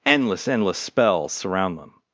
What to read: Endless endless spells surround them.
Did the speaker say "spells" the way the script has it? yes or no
yes